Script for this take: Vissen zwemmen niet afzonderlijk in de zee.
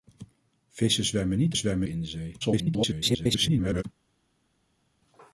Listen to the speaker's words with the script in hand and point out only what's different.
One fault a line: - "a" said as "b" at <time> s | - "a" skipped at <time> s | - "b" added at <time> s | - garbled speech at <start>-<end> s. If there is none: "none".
- "afzonderlijk" said as "zwemmen" at 1.6 s
- garbled speech at 2.4-3.8 s